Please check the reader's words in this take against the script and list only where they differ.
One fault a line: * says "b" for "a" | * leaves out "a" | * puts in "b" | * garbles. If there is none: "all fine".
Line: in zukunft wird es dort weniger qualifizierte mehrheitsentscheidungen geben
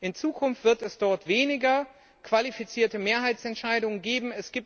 all fine